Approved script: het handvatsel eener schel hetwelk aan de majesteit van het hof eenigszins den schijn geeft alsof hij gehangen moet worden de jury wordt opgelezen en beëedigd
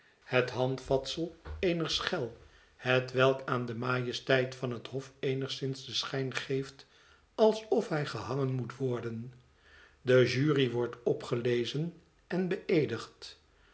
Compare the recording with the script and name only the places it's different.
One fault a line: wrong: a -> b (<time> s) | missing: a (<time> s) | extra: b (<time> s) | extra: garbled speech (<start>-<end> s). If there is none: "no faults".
no faults